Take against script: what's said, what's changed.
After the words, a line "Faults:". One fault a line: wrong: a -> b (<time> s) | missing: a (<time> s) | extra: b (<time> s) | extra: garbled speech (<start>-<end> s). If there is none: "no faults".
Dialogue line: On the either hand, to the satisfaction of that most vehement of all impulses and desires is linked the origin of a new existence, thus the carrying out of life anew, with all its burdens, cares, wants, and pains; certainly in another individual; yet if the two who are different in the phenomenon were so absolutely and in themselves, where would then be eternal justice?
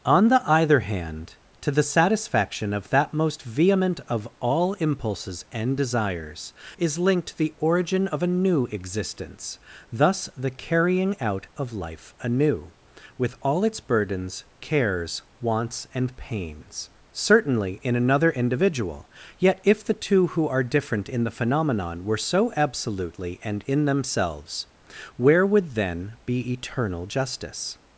On the either hand, to the satisfaction of that most vehement of all impulses and desires is linked the origin of a new existence, thus the carrying out of life anew, with all its burdens, cares, wants, and pains; certainly in another individual; yet if the two who are different in the phenomenon were so absolutely and in themselves, where would then be eternal justice?
Faults:
no faults